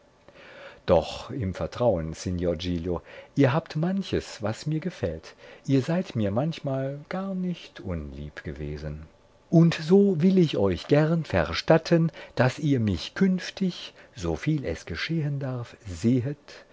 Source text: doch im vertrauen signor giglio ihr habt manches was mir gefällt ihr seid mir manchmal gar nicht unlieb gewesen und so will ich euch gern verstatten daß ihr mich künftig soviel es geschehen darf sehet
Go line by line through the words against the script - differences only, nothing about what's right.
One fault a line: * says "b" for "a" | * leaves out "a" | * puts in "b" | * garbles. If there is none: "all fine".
all fine